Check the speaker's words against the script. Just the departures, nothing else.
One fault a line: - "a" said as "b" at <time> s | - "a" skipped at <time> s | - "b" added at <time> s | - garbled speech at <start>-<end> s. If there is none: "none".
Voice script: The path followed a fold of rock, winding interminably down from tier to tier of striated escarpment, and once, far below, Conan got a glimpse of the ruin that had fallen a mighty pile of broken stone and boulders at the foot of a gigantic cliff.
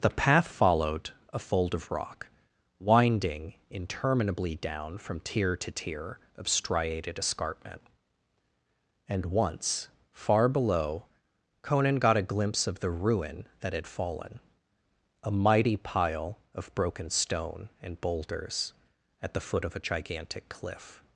none